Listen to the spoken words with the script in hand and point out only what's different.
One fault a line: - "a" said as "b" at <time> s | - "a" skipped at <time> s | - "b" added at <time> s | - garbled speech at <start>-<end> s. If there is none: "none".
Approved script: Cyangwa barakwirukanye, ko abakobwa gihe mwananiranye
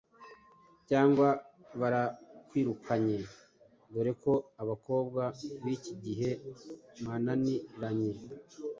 - "dore" added at 3.9 s
- "b'iki" added at 5.6 s